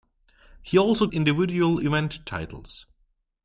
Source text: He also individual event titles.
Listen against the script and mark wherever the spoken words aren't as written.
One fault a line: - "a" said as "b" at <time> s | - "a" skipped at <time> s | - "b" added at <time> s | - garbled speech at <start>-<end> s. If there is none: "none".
none